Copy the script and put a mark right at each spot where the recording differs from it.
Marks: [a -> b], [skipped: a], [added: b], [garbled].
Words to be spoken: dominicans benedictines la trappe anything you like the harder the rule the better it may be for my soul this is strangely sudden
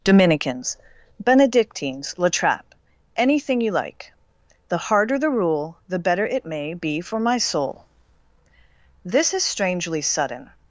dominicans benedictines la trappe anything you like the harder the rule the better it may be for my soul this is strangely sudden